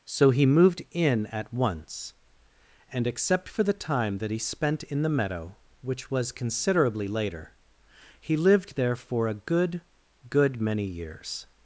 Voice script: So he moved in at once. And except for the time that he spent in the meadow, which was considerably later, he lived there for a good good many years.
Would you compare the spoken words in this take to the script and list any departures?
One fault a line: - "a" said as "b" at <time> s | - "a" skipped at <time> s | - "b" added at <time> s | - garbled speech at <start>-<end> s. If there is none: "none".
none